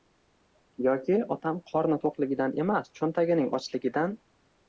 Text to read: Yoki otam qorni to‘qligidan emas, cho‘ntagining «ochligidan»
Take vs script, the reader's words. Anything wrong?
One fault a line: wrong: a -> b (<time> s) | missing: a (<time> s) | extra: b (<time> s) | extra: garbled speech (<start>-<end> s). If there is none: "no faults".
no faults